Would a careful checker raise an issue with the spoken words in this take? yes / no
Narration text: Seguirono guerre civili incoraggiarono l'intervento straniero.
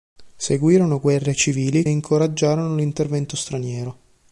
no